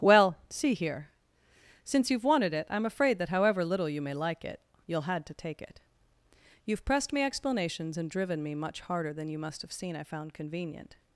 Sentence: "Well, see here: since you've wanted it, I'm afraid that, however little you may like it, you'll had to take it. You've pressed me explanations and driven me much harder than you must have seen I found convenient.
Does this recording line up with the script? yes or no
yes